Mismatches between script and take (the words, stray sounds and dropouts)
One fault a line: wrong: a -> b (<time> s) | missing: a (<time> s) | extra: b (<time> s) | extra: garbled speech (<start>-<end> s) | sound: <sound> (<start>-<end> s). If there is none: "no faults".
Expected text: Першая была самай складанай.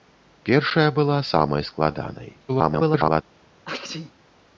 extra: garbled speech (2.5-3.2 s)
sound: sneeze (3.6-4.1 s)